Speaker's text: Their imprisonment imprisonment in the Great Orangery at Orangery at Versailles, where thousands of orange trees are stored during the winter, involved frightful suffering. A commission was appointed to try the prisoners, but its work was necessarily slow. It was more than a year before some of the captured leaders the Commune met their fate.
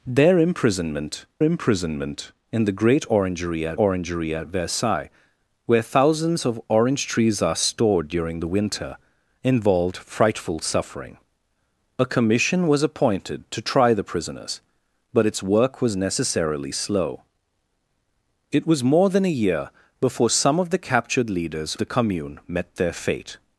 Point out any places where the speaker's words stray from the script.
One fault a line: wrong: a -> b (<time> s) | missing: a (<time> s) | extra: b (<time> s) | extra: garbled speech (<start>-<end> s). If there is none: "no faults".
no faults